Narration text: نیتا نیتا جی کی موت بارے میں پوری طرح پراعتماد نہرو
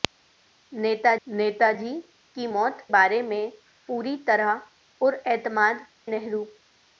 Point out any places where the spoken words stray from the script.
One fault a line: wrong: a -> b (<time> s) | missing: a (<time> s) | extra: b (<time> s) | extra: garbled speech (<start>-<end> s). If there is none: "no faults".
no faults